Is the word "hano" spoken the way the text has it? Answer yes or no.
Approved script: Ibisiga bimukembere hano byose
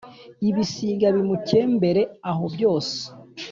no